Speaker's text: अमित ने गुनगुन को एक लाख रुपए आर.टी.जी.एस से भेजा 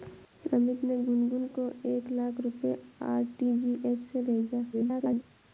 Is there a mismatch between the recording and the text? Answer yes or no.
yes